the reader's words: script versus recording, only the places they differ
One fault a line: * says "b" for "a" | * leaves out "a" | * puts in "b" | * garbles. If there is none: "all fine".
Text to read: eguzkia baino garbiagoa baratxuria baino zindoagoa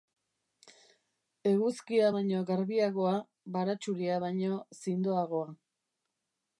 all fine